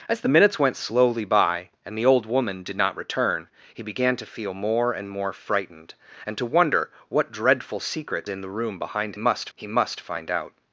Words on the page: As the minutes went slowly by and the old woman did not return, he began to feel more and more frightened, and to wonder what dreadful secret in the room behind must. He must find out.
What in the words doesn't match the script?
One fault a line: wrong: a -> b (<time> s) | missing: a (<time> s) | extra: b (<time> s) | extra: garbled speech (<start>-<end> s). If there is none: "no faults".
no faults